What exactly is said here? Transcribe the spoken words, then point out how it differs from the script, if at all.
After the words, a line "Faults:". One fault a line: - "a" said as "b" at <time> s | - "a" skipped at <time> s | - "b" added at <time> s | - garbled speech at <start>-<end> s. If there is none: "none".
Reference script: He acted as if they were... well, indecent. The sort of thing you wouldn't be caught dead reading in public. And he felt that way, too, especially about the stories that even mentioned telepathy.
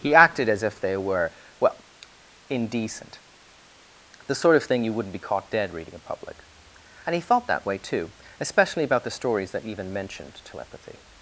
He acted as if they were... well, indecent. The sort of thing you wouldn't be caught dead reading in public. And he felt that way, too, especially about the stories that even mentioned telepathy.
Faults:
none